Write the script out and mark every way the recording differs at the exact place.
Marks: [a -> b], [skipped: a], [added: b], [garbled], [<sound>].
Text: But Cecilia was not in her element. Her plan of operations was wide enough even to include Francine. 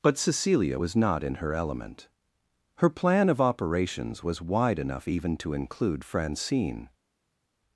But Cecilia was not in her element. Her plan of operations was wide enough even to include Francine.